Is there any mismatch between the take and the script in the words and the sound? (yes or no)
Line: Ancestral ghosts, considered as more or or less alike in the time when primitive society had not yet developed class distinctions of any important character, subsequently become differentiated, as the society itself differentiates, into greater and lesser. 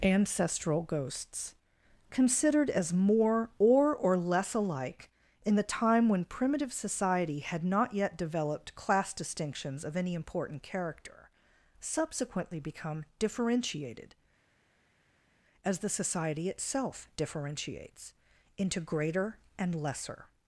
no